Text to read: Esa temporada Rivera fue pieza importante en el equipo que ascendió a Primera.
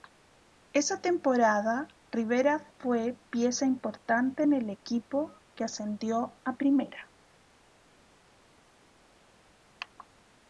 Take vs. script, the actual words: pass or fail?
pass